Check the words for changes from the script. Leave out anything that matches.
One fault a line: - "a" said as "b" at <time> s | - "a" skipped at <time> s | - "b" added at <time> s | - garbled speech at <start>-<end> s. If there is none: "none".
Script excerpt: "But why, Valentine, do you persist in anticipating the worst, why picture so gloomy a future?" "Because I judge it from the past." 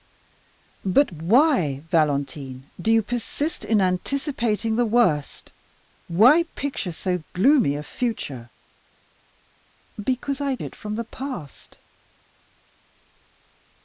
- "judge" skipped at 10.6 s